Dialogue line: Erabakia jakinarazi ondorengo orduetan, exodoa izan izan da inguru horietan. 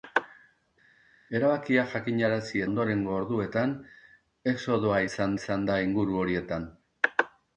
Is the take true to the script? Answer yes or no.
yes